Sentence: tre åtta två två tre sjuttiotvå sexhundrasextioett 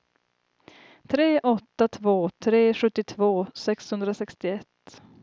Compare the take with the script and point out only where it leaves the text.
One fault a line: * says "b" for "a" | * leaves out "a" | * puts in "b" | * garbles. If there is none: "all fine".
* leaves out "två"